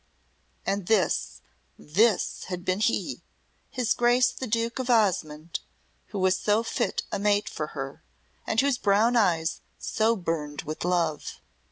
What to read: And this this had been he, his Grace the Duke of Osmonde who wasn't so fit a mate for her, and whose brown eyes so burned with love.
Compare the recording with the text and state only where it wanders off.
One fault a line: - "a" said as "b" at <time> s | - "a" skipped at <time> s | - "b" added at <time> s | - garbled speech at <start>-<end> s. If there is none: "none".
- "wasn't" said as "was" at 6.2 s